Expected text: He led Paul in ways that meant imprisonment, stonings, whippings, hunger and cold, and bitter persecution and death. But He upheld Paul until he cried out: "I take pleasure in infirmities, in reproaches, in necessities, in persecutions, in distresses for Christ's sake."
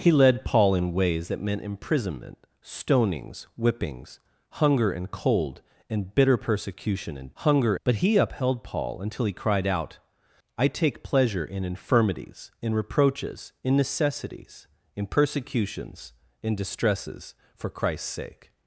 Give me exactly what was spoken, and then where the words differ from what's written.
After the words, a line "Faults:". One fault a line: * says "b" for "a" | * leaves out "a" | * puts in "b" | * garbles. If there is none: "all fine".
He led Paul in ways that meant imprisonment, stonings, whippings, hunger and cold, and bitter persecution and hunger. But He upheld Paul until he cried out: "I take pleasure in infirmities, in reproaches, in necessities, in persecutions, in distresses for Christ's sake."
Faults:
* says "hunger" for "death"